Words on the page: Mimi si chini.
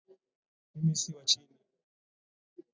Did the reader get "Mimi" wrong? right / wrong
right